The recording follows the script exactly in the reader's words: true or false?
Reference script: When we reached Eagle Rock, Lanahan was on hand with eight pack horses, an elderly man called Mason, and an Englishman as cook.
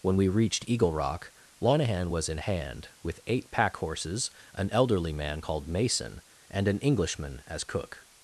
false